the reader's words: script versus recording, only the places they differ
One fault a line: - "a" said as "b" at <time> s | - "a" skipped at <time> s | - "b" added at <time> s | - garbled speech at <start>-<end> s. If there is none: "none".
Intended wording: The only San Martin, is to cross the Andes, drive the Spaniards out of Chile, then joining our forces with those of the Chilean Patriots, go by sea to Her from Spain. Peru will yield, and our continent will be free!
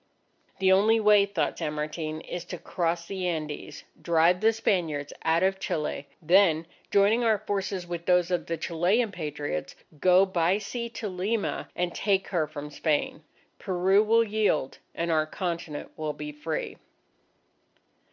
- "way thought" added at 1.0 s
- "Lima and take" added at 11.1 s